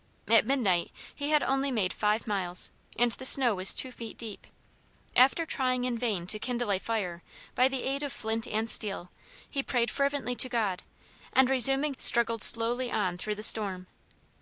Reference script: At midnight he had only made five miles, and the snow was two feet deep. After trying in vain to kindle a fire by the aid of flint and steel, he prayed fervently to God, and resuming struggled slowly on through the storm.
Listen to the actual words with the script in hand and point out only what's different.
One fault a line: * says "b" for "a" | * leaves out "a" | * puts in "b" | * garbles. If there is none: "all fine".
all fine